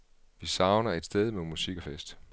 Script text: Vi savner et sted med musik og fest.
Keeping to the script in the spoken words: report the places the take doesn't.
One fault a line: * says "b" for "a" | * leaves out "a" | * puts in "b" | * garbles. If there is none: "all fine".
all fine